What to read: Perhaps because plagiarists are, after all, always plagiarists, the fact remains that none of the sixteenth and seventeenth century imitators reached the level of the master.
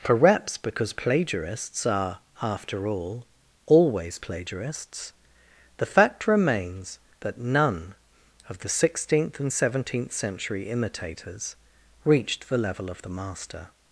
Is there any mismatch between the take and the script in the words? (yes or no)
no